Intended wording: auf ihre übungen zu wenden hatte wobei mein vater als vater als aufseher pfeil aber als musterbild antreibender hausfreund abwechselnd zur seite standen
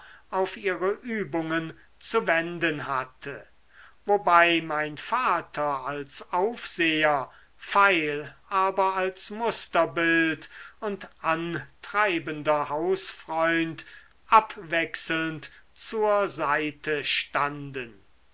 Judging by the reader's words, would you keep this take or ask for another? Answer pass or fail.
fail